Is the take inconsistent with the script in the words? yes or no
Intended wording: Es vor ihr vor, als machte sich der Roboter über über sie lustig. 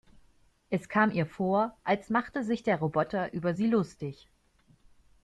yes